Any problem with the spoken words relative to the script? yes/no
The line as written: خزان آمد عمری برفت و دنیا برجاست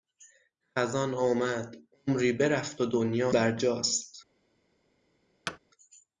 no